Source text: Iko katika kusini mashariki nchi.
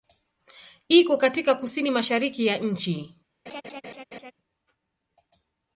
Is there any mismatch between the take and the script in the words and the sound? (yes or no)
yes